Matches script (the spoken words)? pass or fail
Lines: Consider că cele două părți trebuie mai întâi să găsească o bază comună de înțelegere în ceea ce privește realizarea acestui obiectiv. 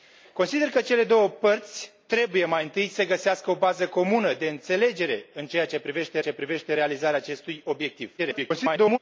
fail